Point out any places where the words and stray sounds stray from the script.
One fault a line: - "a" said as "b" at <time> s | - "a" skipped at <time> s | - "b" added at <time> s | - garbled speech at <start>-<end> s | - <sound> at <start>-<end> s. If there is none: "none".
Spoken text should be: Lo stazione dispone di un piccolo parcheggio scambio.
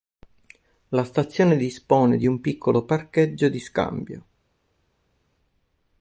- "Lo" said as "La" at 0.9 s
- "di" added at 3.5 s